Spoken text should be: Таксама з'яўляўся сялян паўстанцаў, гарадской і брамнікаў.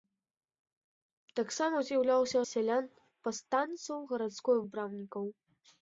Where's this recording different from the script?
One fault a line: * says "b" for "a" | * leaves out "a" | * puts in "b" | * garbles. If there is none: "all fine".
all fine